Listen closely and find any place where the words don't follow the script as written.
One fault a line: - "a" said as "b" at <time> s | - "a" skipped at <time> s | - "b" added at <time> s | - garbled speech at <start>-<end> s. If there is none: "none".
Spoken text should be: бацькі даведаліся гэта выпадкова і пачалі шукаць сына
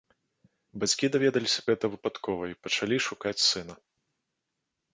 none